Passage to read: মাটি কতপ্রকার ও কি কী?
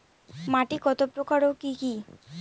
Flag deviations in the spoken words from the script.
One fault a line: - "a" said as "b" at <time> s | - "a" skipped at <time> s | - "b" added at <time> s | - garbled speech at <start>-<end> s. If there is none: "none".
none